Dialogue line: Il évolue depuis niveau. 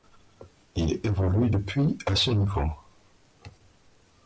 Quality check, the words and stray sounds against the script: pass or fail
fail